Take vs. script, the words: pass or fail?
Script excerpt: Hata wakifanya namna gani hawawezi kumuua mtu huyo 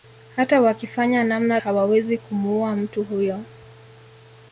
fail